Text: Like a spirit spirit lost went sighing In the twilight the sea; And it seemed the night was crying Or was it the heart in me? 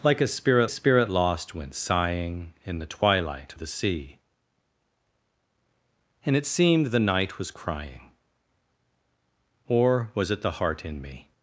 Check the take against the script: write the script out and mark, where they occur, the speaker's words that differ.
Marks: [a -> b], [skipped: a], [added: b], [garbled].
Like a spirit spirit lost went sighing In the twilight the sea; And it seemed the night was crying Or was it the heart in me?